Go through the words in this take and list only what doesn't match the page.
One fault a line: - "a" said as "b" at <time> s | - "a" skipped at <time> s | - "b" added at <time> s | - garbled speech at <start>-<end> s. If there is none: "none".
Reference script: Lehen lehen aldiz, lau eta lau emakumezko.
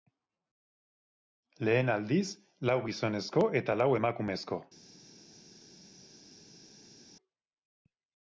- "lehen" skipped at 1.9 s
- "gizonezko" added at 2.9 s